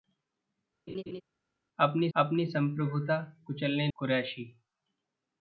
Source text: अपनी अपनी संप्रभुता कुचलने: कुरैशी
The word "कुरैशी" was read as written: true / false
true